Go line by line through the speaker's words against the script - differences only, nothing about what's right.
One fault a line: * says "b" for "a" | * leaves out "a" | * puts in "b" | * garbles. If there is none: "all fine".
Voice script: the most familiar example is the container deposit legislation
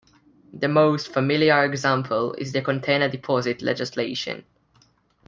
all fine